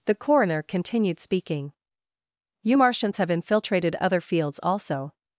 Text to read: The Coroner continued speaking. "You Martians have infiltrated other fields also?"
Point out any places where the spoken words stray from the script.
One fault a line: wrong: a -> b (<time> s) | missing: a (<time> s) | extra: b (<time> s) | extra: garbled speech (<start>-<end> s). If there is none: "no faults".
no faults